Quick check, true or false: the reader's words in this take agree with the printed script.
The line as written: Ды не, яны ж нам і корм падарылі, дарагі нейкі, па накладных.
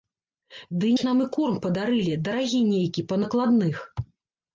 false